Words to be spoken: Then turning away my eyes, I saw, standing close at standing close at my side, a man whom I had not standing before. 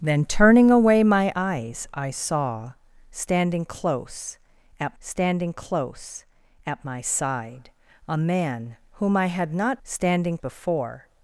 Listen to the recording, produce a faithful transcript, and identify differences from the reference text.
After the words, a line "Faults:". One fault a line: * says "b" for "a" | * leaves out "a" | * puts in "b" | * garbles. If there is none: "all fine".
Then turning away my eyes, I saw, standing close at standing close at my side, a man whom I had not standing before.
Faults:
all fine